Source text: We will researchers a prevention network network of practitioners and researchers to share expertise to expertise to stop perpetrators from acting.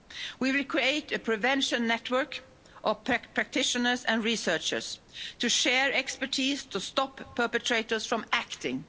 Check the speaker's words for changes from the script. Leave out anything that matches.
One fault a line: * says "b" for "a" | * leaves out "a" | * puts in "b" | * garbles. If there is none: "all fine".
* says "create" for "researchers"
* leaves out "network"
* leaves out "expertise to"